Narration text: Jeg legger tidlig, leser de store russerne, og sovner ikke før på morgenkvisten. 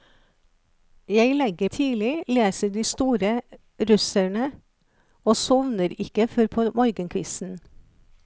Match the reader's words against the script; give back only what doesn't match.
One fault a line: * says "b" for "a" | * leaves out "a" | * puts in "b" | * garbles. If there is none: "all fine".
all fine